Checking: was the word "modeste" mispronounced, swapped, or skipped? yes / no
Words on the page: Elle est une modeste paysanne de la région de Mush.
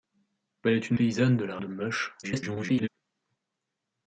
yes